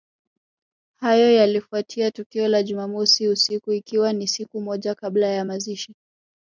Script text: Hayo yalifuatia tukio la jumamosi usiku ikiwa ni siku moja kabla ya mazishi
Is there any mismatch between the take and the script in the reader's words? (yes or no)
no